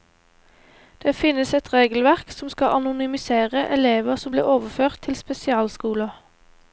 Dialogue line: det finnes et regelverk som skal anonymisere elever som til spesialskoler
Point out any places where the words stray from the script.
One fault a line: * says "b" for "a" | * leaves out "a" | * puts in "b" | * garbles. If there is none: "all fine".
* puts in "blir overført"